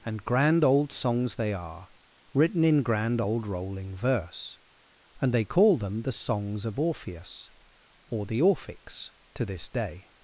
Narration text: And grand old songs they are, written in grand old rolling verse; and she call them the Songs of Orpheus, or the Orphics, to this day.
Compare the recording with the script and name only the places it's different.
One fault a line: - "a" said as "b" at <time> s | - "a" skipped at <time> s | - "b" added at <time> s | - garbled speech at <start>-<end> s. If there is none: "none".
- "she" said as "they" at 5.3 s